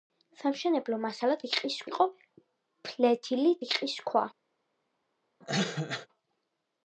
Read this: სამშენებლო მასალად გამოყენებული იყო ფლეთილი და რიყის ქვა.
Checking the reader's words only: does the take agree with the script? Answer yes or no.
no